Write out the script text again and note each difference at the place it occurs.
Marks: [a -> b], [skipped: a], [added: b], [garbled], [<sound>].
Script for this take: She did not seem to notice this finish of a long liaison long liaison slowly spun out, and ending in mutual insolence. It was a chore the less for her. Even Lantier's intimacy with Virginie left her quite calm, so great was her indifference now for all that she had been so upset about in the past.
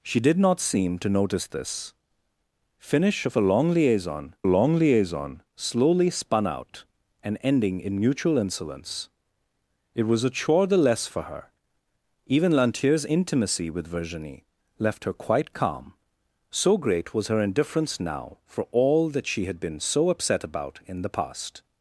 She did not seem to notice this finish of a long liaison long liaison slowly spun out, and ending in mutual insolence. It was a chore the less for her. Even Lantier's intimacy with Virginie left her quite calm, so great was her indifference now for all that she had been so upset about in the past.